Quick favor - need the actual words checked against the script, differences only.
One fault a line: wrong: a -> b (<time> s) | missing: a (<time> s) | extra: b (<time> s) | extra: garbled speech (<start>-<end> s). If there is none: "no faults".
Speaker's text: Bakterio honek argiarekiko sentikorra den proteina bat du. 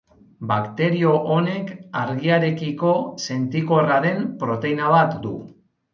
no faults